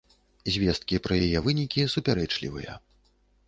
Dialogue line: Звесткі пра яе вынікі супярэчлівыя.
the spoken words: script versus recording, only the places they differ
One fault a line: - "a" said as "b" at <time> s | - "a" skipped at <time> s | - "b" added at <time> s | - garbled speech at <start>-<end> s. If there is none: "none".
none